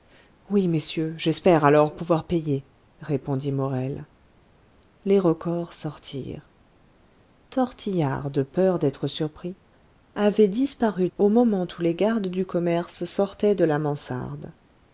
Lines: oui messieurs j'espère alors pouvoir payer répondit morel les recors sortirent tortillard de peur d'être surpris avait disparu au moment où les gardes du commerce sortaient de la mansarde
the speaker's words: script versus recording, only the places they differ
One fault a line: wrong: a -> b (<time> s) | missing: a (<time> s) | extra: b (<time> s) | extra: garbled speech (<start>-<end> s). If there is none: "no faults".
no faults